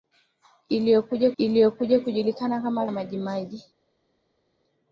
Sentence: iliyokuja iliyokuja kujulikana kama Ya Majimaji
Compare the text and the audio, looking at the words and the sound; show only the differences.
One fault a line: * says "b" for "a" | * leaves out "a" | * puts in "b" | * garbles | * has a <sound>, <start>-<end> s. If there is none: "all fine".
all fine